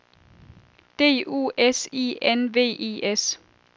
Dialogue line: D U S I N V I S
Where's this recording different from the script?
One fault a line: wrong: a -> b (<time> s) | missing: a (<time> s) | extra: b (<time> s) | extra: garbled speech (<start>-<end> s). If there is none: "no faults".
no faults